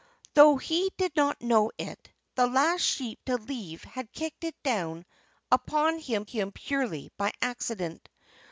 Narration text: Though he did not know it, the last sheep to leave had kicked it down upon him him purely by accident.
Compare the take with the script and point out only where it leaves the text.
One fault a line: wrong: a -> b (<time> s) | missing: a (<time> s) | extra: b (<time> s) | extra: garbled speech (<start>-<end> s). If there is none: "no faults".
no faults